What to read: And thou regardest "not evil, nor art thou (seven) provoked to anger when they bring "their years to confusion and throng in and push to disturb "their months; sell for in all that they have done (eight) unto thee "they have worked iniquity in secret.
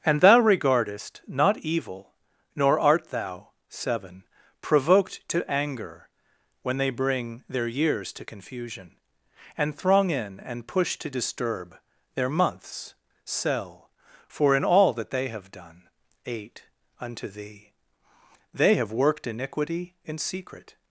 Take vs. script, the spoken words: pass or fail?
pass